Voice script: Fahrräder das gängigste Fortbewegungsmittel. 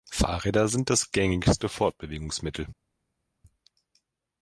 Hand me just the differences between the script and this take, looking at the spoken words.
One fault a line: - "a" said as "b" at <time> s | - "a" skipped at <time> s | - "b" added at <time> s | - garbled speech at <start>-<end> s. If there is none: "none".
- "sind" added at 0.7 s